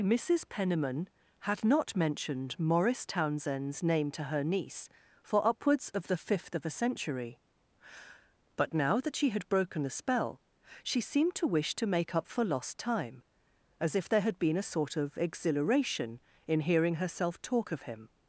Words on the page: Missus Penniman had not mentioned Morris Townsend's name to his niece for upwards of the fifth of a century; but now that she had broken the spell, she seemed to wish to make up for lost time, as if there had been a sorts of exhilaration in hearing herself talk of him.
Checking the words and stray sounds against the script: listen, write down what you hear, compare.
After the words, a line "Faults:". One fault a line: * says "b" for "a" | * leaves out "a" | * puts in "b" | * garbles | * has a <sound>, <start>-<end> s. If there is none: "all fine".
Missus Penniman had not mentioned Morris Townsend's name to her niece for upwards of the fifth of a century; but now that she had broken the spell, she seemed to wish to make up for lost time, as if there had been a sort of exhilaration in hearing herself talk of him.
Faults:
* says "her" for "his"
* says "sort" for "sorts"